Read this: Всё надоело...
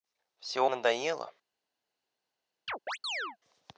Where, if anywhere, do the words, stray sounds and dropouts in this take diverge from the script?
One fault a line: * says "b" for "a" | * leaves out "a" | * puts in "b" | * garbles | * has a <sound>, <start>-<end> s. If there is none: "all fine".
* has a chirp, 2.7-3.4 s